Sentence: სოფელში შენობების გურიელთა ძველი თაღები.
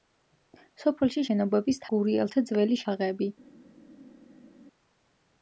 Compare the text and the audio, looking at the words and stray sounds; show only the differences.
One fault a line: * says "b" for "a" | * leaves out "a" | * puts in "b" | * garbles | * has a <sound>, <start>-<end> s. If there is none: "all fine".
all fine